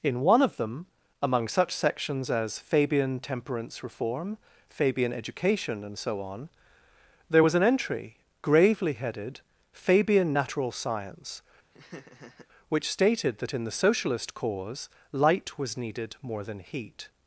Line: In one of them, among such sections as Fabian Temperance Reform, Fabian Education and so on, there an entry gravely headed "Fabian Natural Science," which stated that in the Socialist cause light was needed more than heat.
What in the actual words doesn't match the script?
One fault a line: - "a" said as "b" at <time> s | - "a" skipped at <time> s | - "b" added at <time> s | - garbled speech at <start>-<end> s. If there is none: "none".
- "was" added at 7.4 s